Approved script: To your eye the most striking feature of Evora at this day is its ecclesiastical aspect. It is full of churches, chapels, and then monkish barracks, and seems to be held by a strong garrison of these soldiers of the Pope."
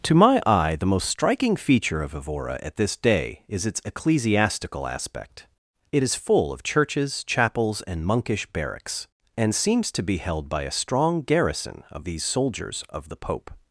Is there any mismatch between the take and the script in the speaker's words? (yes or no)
yes